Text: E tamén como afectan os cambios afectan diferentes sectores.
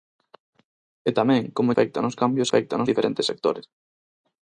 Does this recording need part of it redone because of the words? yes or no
no